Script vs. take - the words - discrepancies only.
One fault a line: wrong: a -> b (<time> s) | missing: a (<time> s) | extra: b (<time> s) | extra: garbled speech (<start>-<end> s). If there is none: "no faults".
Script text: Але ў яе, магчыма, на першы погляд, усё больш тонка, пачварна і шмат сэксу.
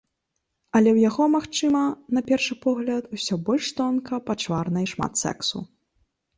wrong: яе -> яго (1.1 s)